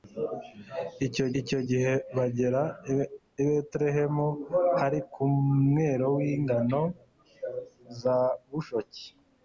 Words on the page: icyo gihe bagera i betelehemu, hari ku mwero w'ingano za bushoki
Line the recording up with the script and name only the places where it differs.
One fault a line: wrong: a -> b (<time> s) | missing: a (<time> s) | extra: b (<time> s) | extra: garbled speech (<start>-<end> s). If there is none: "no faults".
extra: icyo (1.4 s)